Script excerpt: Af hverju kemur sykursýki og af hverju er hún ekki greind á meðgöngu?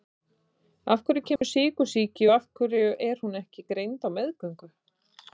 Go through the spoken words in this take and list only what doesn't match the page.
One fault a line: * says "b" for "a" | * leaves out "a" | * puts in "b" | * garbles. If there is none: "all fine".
all fine